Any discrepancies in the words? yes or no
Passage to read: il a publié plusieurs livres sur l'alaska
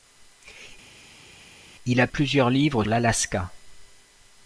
yes